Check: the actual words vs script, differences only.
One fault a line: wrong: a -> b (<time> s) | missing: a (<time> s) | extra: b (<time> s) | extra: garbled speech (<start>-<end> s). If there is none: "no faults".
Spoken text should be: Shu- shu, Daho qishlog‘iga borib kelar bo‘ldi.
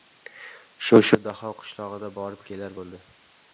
no faults